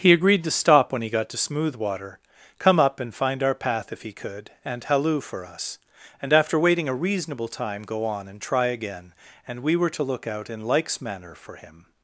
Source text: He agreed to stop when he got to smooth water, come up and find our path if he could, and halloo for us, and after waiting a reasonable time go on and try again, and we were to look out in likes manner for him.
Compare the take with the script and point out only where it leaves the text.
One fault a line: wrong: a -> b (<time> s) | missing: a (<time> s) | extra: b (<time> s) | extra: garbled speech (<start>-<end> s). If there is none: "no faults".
no faults